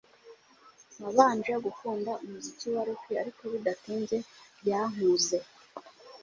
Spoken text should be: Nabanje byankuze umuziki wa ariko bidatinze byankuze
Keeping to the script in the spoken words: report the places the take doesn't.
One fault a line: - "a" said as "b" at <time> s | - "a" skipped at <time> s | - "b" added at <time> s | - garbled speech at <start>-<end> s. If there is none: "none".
- "byankuze" said as "gukunda" at 1.6 s
- "rock" added at 2.9 s